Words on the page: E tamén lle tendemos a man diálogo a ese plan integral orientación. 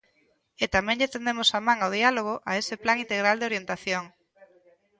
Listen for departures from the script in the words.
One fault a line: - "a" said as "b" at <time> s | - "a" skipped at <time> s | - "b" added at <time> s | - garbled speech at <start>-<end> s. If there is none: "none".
- "ao" added at 1.8 s
- "de" added at 3.4 s